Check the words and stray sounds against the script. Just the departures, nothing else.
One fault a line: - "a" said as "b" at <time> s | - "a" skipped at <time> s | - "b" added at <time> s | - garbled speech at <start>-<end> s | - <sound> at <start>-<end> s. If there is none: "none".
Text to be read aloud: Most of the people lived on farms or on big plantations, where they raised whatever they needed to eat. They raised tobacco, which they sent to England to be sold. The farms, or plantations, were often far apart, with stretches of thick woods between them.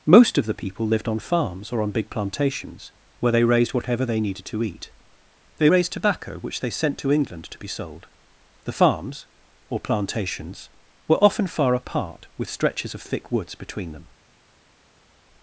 none